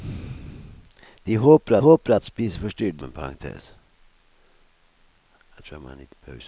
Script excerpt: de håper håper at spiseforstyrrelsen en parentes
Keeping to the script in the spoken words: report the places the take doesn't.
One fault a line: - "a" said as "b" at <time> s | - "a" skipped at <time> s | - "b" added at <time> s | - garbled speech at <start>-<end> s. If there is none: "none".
none